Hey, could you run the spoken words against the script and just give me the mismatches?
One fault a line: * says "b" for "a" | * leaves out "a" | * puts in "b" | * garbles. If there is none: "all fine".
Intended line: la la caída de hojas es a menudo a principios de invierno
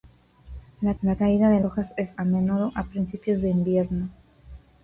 all fine